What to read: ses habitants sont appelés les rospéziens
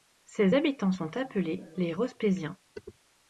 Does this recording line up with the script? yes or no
yes